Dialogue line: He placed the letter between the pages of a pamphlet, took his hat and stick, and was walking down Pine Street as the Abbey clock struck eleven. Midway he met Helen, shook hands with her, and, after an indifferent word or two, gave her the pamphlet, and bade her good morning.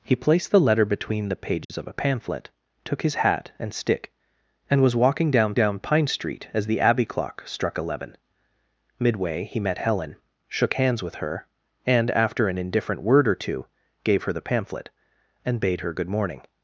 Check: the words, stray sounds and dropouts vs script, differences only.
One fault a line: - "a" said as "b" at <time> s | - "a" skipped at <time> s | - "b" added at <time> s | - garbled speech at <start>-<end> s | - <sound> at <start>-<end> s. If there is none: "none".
- dropout at 1.6-1.7 s
- "down" added at 5.5 s